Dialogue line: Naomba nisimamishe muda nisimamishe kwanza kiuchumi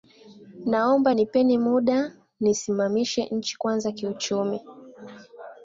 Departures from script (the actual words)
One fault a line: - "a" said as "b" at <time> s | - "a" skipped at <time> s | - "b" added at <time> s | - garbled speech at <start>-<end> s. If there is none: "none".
- "nisimamishe" said as "nipeni" at 1.1 s
- "nchi" added at 3.3 s